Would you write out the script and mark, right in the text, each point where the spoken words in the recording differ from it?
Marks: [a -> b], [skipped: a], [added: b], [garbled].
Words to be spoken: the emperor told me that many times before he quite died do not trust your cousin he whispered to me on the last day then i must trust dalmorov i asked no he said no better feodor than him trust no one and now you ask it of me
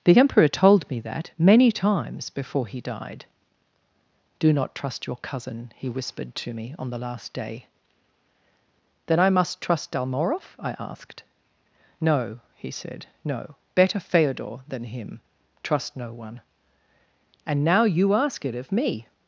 the emperor told me that many times before he [skipped: quite] died do not trust your cousin he whispered to me on the last day then i must trust dalmorov i asked no he said no better feodor than him trust no one and now you ask it of me